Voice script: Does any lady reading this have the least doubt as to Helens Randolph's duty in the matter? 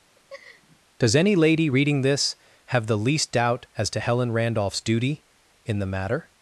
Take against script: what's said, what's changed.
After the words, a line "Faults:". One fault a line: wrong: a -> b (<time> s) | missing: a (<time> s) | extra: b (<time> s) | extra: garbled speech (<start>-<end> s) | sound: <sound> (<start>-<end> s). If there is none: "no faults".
Does any lady reading this have the least doubt as to Helen Randolph's duty in the matter?
Faults:
sound: laugh (0.1-0.8 s)
wrong: Helens -> Helen (4.0 s)